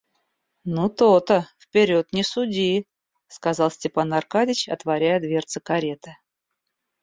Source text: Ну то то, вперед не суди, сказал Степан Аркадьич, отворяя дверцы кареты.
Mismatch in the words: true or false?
false